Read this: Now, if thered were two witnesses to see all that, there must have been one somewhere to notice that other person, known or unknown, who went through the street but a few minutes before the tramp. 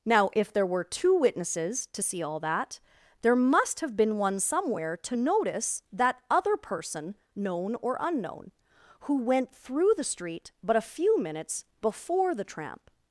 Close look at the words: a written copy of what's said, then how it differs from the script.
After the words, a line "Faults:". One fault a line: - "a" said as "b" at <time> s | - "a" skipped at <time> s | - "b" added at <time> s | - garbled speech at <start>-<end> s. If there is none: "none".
Now, if there were two witnesses to see all that, there must have been one somewhere to notice that other person, known or unknown, who went through the street but a few minutes before the tramp.
Faults:
- "thered" said as "there" at 0.5 s